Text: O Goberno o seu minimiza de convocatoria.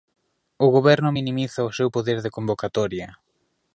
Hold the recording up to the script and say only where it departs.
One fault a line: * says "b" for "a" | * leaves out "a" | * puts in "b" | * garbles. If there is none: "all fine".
* puts in "minimiza"
* says "poder" for "minimiza"